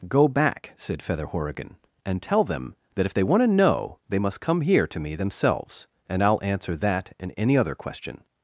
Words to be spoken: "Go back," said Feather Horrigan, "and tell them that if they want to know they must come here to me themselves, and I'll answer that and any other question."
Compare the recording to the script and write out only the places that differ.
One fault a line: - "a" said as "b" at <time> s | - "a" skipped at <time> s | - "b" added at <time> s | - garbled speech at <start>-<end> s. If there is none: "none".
none